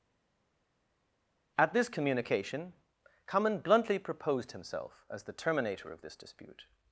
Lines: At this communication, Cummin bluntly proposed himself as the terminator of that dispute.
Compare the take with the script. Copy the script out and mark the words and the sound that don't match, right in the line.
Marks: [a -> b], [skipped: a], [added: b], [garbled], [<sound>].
At this communication, Cummin bluntly proposed himself as the terminator of [that -> this] dispute.